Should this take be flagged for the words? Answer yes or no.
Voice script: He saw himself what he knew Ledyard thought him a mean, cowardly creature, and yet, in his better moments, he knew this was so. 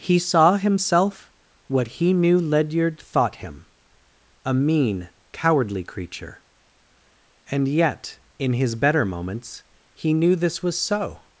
no